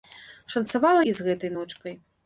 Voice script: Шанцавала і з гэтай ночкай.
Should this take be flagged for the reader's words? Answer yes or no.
no